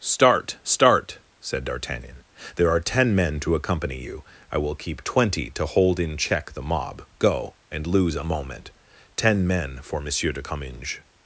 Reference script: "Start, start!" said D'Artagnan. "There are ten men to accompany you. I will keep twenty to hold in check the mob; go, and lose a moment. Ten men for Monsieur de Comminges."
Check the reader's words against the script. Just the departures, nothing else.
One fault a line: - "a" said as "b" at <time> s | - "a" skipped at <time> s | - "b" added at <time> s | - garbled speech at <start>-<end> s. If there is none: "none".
none